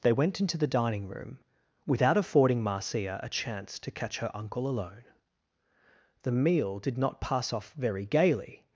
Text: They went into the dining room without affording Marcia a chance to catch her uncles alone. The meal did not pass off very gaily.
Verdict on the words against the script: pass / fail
fail